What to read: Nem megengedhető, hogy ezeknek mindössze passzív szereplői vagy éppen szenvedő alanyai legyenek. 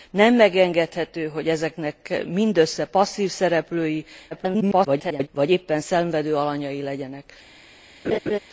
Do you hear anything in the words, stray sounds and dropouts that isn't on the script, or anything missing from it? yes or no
yes